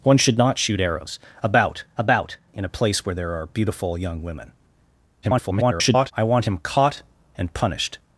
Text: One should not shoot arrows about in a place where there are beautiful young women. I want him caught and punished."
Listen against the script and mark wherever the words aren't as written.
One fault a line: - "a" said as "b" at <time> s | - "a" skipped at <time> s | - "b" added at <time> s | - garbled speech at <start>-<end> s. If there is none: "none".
- "about" added at 2.0 s
- garbled speech at 5.2-6.1 s